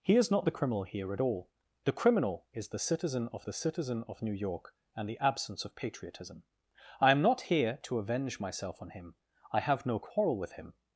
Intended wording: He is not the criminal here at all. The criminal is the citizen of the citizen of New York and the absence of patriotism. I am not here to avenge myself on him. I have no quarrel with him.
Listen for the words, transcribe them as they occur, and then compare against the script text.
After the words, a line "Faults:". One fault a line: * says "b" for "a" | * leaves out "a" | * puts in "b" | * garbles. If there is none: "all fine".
He is not the criminal here at all. The criminal is the citizen of the citizen of New York and the absence of patriotism. I am not here to avenge myself on him. I have no quarrel with him.
Faults:
all fine